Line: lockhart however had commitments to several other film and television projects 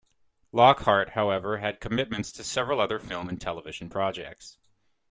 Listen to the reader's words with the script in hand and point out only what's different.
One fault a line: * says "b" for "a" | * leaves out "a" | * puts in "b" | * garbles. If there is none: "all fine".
all fine